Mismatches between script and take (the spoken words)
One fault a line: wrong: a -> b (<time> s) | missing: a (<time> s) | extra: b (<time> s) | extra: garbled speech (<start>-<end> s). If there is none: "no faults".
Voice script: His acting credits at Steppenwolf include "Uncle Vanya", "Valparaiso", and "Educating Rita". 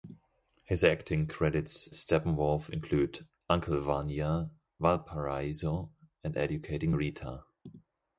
missing: at (1.9 s)